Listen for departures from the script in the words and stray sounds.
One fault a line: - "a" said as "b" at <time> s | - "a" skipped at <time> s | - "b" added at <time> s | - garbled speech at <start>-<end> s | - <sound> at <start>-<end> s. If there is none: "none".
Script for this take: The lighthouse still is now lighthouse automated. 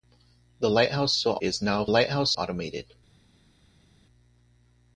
none